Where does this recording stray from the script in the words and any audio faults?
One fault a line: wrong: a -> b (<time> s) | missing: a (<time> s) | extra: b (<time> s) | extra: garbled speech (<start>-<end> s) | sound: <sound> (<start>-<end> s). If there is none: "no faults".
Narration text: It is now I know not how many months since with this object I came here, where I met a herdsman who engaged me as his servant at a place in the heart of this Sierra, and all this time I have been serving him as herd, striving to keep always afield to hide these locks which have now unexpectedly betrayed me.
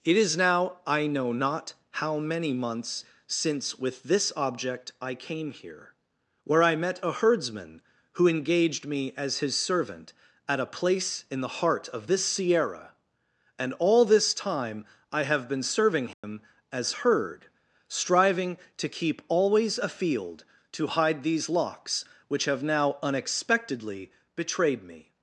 sound: dropout (16.1-16.2 s)